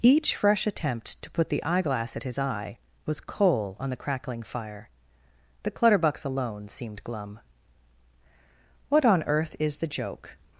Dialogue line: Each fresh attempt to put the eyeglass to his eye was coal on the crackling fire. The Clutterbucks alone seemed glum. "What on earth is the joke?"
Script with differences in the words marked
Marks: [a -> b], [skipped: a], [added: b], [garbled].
Each fresh attempt to put the eyeglass [to -> at] his eye was coal on the crackling fire. The Clutterbucks alone seemed glum. "What on earth is the joke?"